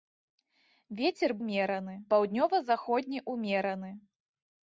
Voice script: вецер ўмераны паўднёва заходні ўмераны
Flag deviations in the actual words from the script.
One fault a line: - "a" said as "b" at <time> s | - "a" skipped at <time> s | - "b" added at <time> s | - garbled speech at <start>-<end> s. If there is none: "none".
none